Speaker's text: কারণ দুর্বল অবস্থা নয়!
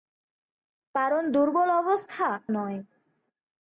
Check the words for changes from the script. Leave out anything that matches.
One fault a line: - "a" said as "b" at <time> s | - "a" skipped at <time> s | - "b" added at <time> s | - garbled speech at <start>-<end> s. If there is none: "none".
none